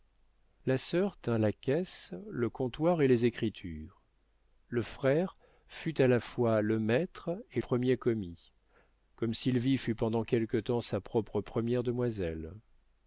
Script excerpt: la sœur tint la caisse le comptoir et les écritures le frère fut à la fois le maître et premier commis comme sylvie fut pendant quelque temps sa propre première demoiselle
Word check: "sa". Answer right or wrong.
right